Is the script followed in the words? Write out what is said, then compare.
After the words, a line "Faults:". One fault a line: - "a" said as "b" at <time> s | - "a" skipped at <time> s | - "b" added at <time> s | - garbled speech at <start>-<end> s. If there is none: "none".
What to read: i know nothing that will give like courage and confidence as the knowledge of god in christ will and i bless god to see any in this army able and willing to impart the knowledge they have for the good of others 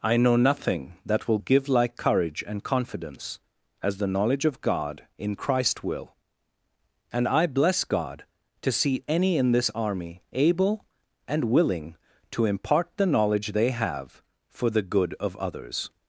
i know nothing that will give like courage and confidence as the knowledge of god in christ will and i bless god to see any in this army able and willing to impart the knowledge they have for the good of others
Faults:
none